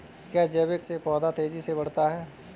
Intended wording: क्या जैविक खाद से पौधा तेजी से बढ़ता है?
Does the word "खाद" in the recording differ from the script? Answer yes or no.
yes